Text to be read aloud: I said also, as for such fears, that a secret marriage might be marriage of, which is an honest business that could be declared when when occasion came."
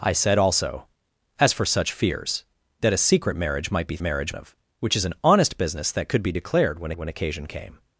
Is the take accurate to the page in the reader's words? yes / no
yes